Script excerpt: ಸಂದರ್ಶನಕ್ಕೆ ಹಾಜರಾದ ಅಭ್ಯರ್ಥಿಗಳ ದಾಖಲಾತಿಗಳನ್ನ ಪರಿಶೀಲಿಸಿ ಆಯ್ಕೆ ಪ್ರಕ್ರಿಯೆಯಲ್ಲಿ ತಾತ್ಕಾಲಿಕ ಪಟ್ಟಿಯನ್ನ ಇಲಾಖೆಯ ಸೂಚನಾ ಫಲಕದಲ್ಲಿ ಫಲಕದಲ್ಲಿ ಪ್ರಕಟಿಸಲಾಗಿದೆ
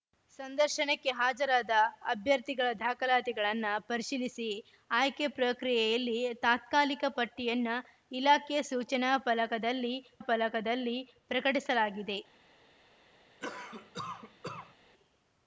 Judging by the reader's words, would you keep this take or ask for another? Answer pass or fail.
pass